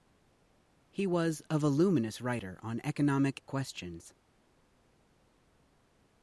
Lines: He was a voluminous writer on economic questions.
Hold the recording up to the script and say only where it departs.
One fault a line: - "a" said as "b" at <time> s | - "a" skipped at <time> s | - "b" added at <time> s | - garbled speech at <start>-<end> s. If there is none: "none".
none